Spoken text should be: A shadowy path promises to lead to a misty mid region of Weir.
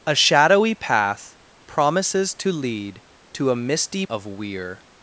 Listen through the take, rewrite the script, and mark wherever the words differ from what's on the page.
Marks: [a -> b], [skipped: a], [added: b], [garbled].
A shadowy path promises to lead to a misty [skipped: mid region] of Weir.